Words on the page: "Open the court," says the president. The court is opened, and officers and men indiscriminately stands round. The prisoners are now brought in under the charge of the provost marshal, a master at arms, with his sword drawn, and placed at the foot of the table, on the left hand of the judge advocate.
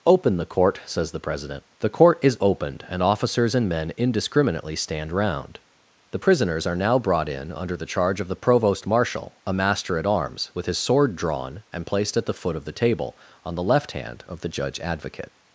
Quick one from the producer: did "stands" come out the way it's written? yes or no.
no